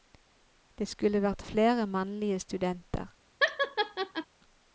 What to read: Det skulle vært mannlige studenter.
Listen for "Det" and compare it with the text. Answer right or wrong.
right